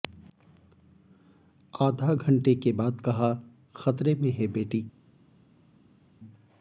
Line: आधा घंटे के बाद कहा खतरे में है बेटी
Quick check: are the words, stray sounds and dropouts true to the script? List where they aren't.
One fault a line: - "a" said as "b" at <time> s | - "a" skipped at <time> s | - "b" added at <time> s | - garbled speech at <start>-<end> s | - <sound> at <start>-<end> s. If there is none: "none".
none